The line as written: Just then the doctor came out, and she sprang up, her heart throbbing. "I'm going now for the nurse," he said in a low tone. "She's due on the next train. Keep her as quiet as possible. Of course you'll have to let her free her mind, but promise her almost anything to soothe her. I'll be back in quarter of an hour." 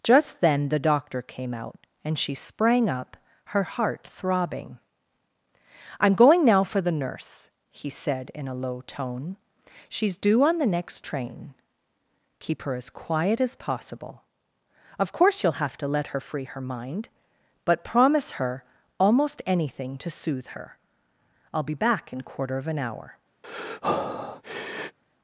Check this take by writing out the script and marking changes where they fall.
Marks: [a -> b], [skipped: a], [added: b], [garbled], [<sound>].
Just then the doctor came out, and she sprang up, her heart throbbing. "I'm going now for the nurse," he said in a low tone. "She's due on the next train. Keep her as quiet as possible. Of course you'll have to let her free her mind, but promise her almost anything to soothe her. I'll be back in quarter of an hour." [breath]